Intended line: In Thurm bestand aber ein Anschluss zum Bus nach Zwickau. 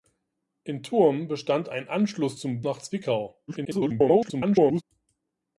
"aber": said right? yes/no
no